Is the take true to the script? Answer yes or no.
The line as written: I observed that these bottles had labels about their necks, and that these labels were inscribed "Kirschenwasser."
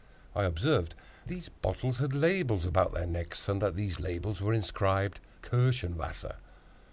no